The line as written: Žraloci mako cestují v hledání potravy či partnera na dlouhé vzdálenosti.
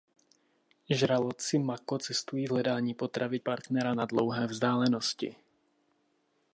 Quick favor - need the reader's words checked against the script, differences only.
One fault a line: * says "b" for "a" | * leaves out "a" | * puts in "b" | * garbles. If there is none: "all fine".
* leaves out "či"